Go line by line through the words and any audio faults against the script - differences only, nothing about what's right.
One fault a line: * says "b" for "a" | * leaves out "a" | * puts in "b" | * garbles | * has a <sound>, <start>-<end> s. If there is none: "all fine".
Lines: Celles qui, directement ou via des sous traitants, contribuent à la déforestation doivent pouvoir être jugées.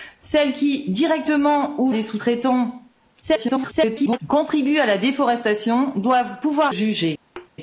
* leaves out "via"
* garbles
* leaves out "être"
* has a thud, 7.4-7.5 s